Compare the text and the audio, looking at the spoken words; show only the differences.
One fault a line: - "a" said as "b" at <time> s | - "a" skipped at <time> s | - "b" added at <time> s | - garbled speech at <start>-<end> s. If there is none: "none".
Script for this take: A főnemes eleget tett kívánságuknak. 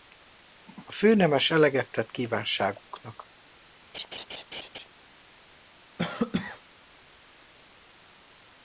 none